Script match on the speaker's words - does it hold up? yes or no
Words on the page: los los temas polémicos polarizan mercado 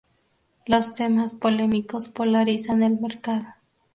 no